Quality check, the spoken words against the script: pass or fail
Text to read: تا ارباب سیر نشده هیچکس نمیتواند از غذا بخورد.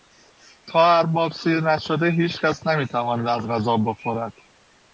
pass